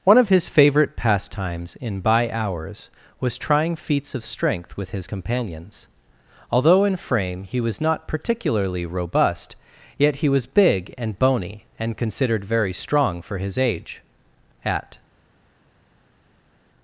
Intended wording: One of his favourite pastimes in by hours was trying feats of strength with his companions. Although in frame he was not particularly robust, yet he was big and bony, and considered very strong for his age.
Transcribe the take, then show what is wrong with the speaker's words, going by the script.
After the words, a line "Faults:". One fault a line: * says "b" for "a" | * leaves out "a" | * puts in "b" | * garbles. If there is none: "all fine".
One of his favourite pastimes in by hours was trying feats of strength with his companions. Although in frame he was not particularly robust, yet he was big and bony, and considered very strong for his age. At
Faults:
* puts in "At"